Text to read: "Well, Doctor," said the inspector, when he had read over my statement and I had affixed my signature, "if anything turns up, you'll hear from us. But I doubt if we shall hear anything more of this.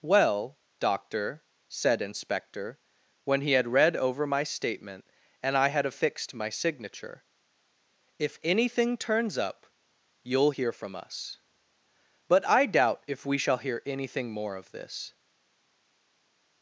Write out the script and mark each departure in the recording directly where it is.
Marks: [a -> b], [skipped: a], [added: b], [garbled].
"Well, Doctor," said [skipped: the] inspector, when he had read over my statement and I had affixed my signature, "if anything turns up, you'll hear from us. But I doubt if we shall hear anything more of this.